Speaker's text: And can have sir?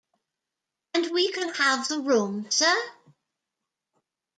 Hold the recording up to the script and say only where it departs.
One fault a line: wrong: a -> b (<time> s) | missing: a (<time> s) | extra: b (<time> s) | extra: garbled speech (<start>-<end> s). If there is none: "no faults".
extra: we (1.1 s)
extra: the room (1.9 s)